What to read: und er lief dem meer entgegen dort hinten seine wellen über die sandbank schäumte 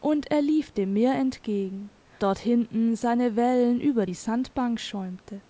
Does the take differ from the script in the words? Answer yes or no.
no